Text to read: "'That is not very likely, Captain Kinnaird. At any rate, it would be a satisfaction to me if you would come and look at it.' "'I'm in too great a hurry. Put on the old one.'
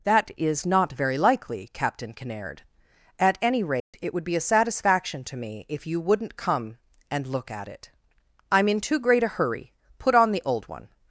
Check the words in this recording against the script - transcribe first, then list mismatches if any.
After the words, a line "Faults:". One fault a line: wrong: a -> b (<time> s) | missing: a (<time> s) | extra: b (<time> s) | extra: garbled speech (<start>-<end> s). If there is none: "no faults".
"'That is not very likely, Captain Kinnaird. At any rate, it would be a satisfaction to me if you wouldn't come and look at it.' "'I'm in too great a hurry. Put on the old one.'
Faults:
wrong: would -> wouldn't (6.0 s)